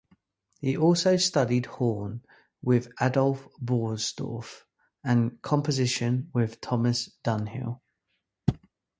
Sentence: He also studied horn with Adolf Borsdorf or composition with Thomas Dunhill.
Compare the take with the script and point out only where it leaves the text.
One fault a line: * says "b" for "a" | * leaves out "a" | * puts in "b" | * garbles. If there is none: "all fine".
* says "and" for "or"